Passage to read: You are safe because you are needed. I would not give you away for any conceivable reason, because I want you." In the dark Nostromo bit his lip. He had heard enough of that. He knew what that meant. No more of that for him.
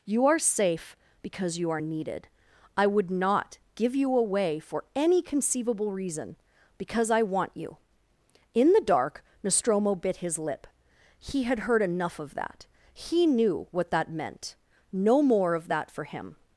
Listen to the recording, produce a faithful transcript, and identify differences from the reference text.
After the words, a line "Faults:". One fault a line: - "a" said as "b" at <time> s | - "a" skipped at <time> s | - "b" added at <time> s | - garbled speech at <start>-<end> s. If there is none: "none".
You are safe because you are needed. I would not give you away for any conceivable reason, because I want you." In the dark Nostromo bit his lip. He had heard enough of that. He knew what that meant. No more of that for him.
Faults:
none